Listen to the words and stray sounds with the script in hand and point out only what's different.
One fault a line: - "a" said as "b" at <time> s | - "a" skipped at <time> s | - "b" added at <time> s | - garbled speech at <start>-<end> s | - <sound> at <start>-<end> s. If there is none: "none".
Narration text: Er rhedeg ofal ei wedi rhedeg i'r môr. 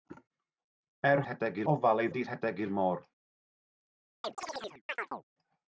- chirp at 4.2-5.2 s